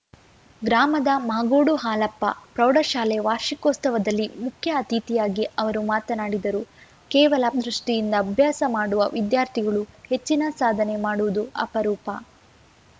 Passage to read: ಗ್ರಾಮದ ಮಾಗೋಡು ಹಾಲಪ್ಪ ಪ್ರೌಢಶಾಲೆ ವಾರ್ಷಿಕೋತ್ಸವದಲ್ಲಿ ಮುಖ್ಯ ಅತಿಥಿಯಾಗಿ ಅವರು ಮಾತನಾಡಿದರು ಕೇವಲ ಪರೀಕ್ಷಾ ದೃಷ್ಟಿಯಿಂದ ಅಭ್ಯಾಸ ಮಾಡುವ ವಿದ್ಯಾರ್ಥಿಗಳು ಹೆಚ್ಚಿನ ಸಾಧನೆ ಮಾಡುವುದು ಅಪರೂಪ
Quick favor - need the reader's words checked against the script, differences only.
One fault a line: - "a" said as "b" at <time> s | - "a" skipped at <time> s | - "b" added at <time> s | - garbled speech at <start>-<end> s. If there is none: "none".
- "ಪರೀಕ್ಷಾ" skipped at 7.5 s